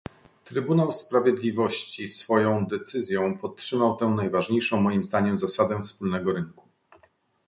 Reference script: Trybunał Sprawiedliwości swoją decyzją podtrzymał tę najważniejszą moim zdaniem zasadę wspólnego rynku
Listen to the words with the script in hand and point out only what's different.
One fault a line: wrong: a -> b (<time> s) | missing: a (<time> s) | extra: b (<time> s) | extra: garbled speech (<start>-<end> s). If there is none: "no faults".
no faults